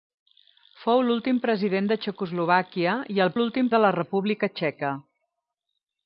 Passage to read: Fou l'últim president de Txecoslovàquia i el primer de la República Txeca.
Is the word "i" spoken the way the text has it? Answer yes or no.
yes